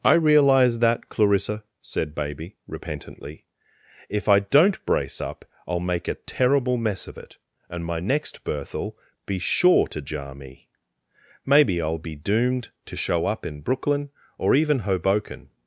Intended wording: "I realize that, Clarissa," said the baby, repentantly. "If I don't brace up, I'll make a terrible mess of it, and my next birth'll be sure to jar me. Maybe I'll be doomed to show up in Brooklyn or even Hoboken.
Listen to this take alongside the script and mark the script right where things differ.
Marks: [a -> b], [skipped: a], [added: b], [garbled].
"I realize that, Clarissa," said [skipped: the] baby, repentantly. "If I don't brace up, I'll make a terrible mess of it, and my next birth'll be sure to jar me. Maybe I'll be doomed to show up in Brooklyn or even Hoboken.